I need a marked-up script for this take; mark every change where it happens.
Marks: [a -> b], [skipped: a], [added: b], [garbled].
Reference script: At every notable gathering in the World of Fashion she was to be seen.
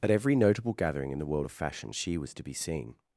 At every notable gathering in the World of Fashion she was to be seen.